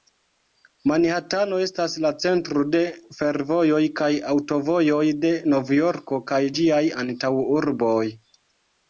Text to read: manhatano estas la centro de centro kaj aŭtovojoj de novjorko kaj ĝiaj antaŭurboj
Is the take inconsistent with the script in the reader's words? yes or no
yes